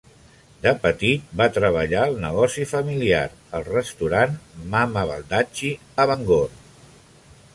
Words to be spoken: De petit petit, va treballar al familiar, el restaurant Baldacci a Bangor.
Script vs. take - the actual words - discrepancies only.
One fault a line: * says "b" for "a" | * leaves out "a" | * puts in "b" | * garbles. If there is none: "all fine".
* leaves out "petit"
* puts in "negoci"
* puts in "Mama"